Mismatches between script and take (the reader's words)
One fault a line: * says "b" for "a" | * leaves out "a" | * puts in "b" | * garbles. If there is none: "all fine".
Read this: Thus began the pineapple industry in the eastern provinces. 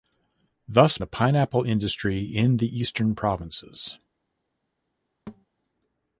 * leaves out "began"